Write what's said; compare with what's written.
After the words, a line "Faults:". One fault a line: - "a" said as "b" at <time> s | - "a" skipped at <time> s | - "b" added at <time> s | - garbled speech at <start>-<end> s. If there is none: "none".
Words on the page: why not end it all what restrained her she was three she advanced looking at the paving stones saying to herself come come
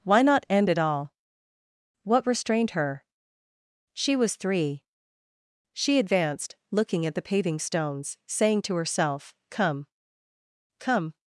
why not end it all what restrained her she was three she advanced looking at the paving stones saying to herself come come
Faults:
none